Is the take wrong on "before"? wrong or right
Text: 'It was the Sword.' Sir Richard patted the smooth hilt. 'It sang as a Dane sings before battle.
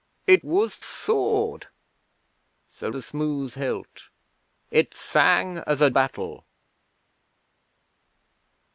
wrong